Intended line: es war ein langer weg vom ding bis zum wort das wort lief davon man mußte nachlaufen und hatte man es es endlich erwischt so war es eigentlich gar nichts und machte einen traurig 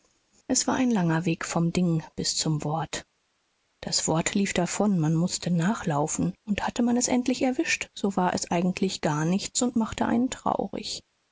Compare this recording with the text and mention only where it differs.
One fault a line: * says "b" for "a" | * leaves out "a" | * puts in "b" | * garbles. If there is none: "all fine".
* leaves out "es"